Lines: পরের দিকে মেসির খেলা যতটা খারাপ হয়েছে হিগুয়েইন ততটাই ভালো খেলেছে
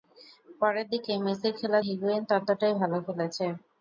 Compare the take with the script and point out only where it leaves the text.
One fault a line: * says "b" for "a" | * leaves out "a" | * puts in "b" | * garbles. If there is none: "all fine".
* leaves out "যতটা খারাপ হয়েছে"